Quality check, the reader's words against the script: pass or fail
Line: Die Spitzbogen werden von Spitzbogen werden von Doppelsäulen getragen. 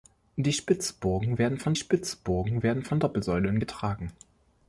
pass